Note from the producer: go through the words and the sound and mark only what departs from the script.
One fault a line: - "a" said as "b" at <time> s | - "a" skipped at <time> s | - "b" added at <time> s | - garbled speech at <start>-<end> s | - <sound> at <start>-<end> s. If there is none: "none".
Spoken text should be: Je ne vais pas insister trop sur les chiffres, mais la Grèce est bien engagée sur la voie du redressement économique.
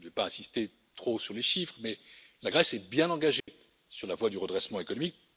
- dropout at 3.4-3.5 s